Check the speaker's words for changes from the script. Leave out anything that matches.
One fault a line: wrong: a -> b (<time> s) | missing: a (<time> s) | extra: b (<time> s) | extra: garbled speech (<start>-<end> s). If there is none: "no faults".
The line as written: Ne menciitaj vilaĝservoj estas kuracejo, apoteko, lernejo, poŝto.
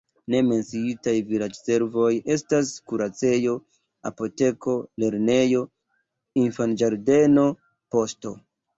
extra: infanĝardeno (6.4 s)